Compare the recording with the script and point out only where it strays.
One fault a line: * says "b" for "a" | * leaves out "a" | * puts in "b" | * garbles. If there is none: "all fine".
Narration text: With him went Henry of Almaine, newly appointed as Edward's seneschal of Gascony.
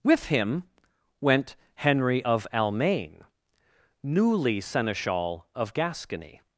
* leaves out "appointed as Edward's"